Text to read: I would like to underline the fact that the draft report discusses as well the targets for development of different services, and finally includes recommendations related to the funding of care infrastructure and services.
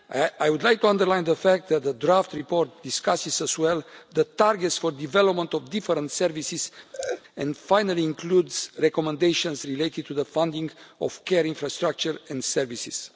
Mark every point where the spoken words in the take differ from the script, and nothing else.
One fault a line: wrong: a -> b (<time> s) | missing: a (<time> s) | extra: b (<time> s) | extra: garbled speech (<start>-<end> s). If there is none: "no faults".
no faults